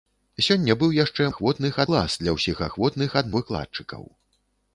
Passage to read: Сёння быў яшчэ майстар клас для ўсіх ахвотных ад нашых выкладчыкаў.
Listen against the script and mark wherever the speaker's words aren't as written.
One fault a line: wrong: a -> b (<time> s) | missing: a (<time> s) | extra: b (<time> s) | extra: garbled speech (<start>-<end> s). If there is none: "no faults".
wrong: майстар -> ахвотных (1.3 s)
missing: нашых (3.3 s)